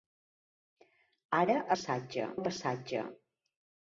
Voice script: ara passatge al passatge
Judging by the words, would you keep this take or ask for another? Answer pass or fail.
pass